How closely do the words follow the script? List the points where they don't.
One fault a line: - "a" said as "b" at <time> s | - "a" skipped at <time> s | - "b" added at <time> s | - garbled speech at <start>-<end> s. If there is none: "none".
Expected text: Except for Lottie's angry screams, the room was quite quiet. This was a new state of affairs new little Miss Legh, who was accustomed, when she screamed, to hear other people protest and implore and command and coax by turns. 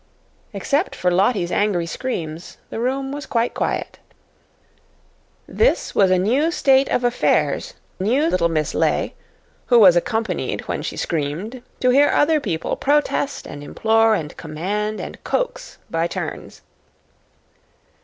none